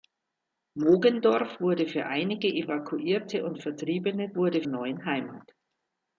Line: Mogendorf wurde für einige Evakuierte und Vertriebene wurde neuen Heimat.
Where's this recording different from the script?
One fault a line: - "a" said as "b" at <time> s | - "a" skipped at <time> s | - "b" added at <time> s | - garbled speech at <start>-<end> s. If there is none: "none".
none